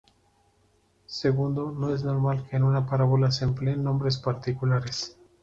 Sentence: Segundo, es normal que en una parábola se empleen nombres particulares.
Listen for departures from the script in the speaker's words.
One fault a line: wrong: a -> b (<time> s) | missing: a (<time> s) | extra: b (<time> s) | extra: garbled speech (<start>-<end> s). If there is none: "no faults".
extra: no (1.8 s)